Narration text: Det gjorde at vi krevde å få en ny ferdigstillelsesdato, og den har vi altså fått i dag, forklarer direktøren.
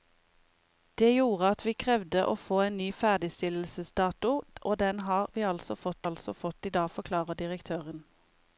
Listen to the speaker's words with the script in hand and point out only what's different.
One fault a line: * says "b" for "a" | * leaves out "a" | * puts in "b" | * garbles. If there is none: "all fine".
* puts in "altså fått"